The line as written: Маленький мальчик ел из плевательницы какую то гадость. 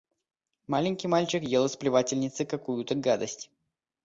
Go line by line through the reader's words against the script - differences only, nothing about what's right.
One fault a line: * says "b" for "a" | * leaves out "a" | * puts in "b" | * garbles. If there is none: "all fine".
all fine